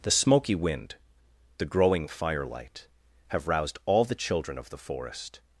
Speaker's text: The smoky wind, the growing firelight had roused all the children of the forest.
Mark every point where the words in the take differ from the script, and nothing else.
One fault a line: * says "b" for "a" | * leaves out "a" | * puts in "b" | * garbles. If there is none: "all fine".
* says "have" for "had"